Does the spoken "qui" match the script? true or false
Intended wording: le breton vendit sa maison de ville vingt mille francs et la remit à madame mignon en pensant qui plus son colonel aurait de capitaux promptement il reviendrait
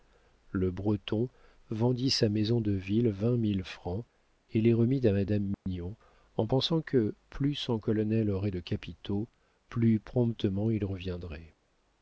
false